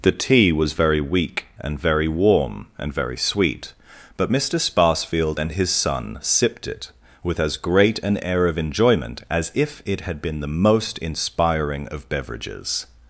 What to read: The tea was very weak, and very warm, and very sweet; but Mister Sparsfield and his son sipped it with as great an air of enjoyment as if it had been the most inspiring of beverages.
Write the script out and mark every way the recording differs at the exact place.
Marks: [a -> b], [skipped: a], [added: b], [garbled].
The tea was very weak, and very warm, and very sweet; but Mister Sparsfield and his son sipped it with as great an air of enjoyment as if it had been the most inspiring of beverages.